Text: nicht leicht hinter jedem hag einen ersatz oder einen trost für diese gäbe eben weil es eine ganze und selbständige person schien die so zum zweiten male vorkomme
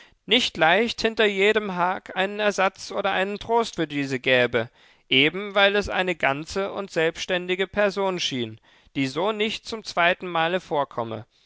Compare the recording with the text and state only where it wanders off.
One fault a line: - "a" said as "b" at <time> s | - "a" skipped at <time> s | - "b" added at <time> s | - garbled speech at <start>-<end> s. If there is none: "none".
- "nicht" added at 9.3 s